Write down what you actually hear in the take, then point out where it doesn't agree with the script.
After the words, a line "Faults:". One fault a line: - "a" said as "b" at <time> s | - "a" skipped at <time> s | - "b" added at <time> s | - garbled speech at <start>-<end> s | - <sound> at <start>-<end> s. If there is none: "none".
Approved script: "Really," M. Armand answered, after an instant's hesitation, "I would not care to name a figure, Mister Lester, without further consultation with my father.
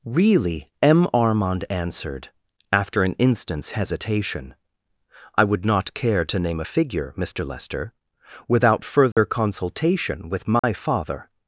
"Really," M. Armand answered, after an instant's hesitation, "I would not care to name a figure, Mister Lester, without further consultation with my father.
Faults:
- dropout at 9.1-9.2 s
- dropout at 10.6-10.6 s